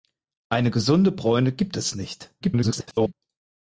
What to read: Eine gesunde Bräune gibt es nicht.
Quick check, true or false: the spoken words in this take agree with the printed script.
false